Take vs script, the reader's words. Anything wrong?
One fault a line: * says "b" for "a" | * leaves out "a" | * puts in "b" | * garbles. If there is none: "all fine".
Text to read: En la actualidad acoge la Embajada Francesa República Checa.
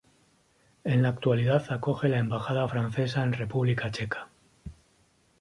* puts in "en"